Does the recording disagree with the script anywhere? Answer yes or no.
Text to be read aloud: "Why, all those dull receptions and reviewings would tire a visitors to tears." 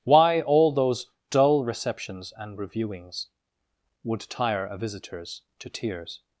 no